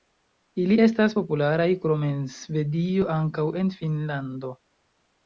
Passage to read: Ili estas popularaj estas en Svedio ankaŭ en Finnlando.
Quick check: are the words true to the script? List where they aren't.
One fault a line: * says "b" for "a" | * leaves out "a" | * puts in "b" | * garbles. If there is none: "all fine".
* says "krom" for "estas"